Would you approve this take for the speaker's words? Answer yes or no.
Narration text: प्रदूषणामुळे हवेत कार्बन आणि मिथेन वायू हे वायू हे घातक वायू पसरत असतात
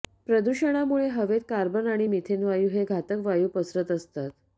no